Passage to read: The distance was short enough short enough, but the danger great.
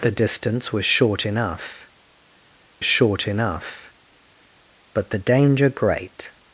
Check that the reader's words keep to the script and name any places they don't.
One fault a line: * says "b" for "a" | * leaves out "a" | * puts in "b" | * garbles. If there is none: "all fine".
all fine